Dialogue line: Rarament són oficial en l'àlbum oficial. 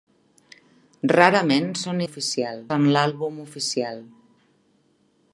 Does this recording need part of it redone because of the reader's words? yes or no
no